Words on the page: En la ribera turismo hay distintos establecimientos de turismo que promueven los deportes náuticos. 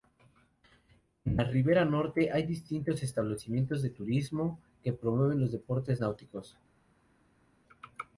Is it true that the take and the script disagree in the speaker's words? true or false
true